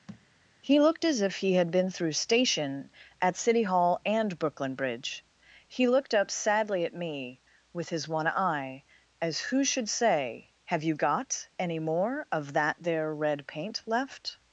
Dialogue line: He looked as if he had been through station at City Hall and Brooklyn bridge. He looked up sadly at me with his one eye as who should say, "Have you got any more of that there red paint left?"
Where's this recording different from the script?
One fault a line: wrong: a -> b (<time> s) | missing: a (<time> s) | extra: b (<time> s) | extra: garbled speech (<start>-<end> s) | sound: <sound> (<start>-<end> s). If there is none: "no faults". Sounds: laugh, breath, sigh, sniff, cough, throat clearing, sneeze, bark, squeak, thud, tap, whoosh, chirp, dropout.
sound: thud (0.1-0.3 s)